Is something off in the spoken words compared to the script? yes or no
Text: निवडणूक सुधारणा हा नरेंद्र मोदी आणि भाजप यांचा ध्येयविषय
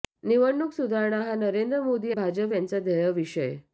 yes